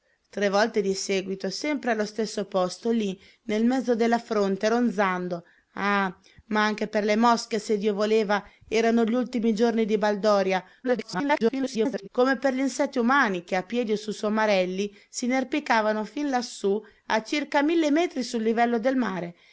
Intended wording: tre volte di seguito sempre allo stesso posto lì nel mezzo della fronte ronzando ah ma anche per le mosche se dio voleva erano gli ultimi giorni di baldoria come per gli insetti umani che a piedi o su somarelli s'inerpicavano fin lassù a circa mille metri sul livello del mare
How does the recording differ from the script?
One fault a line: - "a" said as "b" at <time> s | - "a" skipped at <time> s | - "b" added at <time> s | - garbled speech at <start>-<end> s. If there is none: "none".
- garbled speech at 10.8-12.1 s